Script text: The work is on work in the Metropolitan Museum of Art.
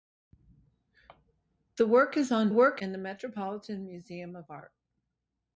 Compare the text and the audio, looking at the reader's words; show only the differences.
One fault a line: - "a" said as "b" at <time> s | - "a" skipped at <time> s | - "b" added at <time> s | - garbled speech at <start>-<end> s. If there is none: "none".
none